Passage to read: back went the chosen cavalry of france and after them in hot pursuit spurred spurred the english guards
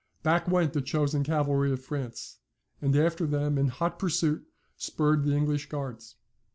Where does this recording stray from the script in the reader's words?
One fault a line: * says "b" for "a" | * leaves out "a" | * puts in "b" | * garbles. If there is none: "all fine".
* leaves out "spurred"